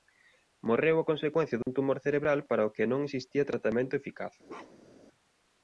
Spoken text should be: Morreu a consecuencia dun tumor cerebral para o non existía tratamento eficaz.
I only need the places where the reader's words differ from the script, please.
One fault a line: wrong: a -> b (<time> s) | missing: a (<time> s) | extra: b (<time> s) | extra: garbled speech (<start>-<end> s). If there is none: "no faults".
extra: que (2.8 s)